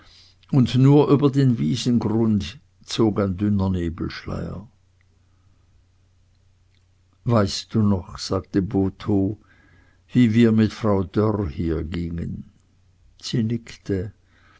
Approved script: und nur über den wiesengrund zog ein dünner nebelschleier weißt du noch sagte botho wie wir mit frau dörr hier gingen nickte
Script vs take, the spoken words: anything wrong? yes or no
yes